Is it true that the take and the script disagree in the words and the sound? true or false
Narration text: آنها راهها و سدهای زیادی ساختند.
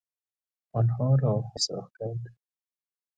true